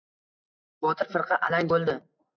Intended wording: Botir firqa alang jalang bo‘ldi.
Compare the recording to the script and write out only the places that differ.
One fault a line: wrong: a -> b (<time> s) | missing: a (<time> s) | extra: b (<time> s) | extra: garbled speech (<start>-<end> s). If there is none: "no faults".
missing: jalang (1.7 s)